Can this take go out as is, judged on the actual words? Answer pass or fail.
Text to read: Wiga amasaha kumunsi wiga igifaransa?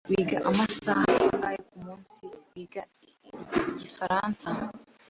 fail